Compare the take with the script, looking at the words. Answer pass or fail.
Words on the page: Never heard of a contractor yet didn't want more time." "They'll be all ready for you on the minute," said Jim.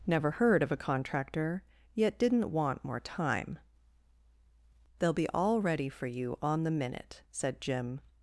pass